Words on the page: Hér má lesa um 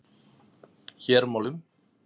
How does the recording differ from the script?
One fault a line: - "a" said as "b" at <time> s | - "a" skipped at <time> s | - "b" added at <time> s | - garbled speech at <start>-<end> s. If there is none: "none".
- "lesa" skipped at 1.4 s